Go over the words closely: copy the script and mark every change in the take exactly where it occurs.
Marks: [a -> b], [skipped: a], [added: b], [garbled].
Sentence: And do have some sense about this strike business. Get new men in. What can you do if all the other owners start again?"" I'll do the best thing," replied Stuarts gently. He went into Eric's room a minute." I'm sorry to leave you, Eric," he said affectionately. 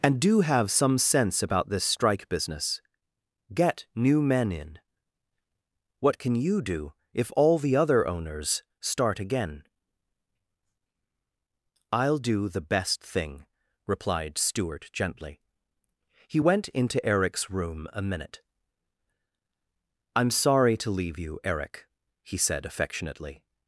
And do have some sense about this strike business. Get new men in. What can you do if all the other owners start again?"" I'll do the best thing," replied [Stuarts -> Stuart] gently. He went into Eric's room a minute." I'm sorry to leave you, Eric," he said affectionately.